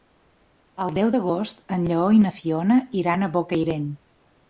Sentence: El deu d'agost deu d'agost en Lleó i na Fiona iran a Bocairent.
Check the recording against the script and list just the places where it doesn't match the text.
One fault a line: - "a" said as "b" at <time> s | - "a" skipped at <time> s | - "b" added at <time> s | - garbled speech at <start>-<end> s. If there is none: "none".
- "deu d'agost" skipped at 1.6 s